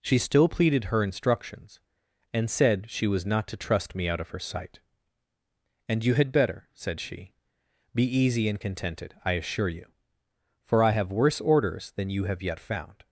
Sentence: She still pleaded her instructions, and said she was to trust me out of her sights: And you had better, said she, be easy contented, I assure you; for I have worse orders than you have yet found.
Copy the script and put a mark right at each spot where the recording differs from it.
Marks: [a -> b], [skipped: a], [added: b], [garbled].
She still pleaded her instructions, and said she was [added: not] to trust me out of her [sights: -> sight] And you had better, said she, be easy [added: and] contented, I assure you; for I have worse orders than you have yet found.